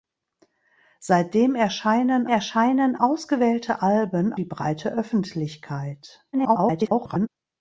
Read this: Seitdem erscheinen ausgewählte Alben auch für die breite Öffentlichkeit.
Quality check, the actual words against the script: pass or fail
fail